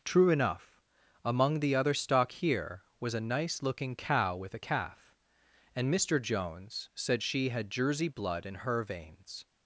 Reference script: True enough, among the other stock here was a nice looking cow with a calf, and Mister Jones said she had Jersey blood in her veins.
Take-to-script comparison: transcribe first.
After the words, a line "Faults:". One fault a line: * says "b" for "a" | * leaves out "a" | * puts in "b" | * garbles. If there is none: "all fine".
True enough, among the other stock here was a nice looking cow with a calf, and Mister Jones said she had Jersey blood in her veins.
Faults:
all fine